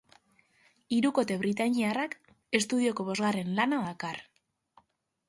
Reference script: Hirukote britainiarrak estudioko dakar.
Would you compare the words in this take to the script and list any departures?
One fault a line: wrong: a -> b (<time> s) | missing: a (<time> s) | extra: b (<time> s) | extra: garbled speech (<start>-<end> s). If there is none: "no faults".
extra: bosgarren lana (3.1 s)